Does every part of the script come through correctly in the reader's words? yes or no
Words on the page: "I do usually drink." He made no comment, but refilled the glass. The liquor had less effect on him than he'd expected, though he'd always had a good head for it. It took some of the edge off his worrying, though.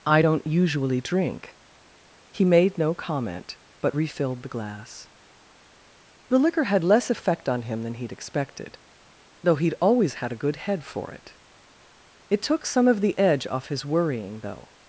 no